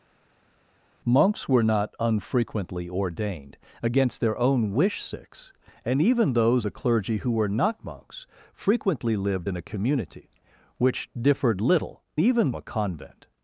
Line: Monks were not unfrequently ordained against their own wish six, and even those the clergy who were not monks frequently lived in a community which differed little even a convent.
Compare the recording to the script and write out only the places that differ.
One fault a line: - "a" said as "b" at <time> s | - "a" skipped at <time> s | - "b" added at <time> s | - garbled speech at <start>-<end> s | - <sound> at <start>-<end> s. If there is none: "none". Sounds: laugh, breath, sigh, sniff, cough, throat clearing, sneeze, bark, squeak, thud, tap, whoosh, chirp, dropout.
none